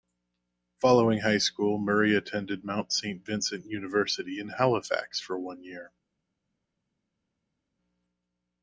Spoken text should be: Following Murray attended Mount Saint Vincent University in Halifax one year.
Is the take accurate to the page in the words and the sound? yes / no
no